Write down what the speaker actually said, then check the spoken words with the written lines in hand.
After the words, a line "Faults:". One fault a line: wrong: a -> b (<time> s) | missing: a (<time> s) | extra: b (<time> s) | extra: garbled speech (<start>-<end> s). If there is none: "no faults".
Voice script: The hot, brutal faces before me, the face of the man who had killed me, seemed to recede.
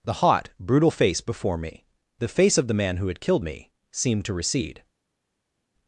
The hot, brutal face before me, the face of the man who had killed me, seemed to recede.
Faults:
wrong: faces -> face (0.9 s)